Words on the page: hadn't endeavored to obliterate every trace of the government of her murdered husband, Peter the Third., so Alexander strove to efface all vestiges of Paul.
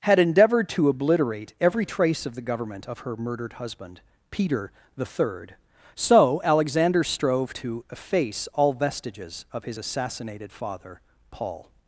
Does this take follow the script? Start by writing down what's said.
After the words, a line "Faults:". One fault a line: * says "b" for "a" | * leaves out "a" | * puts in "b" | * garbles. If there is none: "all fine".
had endeavored to obliterate every trace of the government of her murdered husband, Peter the Third., so Alexander strove to efface all vestiges of his assassinated father, Paul.
Faults:
* says "had" for "hadn't"
* puts in "his assassinated father"